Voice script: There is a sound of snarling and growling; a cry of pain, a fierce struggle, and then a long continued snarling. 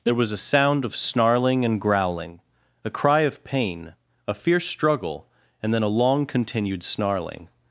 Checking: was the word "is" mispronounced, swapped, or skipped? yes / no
yes